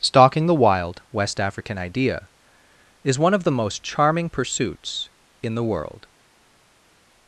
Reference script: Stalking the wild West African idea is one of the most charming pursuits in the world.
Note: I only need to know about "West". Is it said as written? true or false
true